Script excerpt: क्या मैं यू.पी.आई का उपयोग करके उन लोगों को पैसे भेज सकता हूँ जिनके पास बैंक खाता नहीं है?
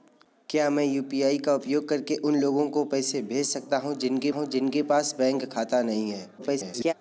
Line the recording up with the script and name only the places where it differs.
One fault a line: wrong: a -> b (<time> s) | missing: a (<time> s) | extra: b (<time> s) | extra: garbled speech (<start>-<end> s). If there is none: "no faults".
extra: हूँ जिनके (4.3 s)
extra: garbled speech (6.4-6.9 s)